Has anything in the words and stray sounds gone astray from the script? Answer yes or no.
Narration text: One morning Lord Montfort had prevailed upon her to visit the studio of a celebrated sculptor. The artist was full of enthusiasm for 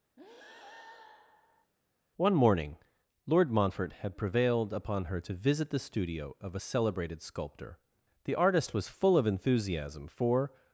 yes